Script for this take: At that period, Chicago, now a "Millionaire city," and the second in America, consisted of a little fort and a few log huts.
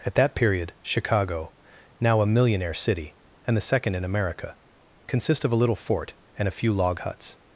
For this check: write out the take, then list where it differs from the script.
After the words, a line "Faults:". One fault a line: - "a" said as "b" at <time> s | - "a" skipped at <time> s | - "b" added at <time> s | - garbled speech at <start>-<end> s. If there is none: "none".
At that period, Chicago, now a "Millionaire city," and the second in America, consist of a little fort and a few log huts.
Faults:
- "consisted" said as "consist" at 5.1 s